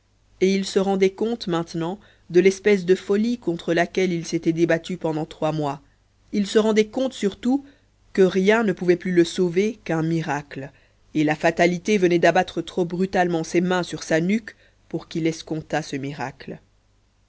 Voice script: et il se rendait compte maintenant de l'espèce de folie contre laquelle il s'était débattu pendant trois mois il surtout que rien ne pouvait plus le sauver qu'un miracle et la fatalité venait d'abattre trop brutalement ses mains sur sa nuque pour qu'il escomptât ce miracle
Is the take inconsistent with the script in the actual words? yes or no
yes